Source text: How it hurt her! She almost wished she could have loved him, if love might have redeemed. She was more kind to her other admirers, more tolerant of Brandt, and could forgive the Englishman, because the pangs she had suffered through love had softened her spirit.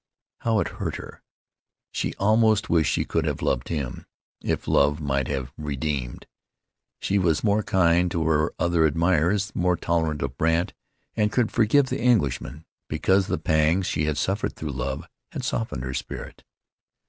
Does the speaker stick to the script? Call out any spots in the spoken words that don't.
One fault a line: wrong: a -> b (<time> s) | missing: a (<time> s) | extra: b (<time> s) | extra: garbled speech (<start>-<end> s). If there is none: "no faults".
no faults